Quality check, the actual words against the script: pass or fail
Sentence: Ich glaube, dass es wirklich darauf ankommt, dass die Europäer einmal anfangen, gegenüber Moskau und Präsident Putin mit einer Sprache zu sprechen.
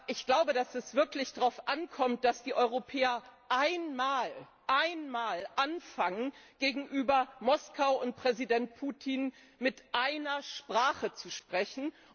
pass